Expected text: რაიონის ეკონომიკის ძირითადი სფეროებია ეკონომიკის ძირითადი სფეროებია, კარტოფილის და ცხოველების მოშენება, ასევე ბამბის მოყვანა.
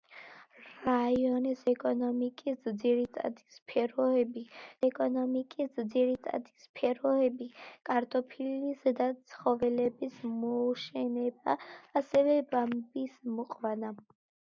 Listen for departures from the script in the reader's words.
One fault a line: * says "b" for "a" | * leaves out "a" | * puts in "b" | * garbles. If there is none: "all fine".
all fine